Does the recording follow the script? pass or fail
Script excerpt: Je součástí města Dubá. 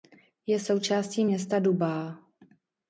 pass